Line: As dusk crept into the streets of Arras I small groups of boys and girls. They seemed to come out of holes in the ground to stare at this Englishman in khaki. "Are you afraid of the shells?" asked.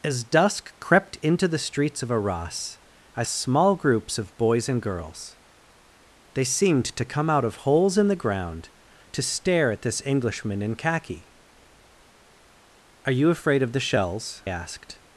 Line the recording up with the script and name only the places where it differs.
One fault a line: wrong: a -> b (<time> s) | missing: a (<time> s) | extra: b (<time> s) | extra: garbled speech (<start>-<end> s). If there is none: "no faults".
no faults